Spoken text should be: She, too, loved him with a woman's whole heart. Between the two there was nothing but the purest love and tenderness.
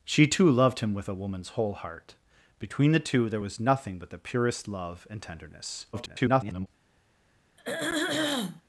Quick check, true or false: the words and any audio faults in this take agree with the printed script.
false